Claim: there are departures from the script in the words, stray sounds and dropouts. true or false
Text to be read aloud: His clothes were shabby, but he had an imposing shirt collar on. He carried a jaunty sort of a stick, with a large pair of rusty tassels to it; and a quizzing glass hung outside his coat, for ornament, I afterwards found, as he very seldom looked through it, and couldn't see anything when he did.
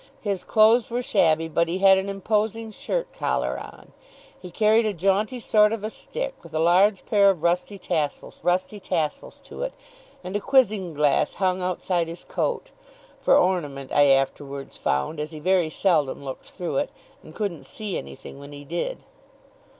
true